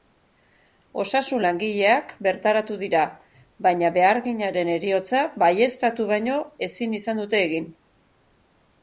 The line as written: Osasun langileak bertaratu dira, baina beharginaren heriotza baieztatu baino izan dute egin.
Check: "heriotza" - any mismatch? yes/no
no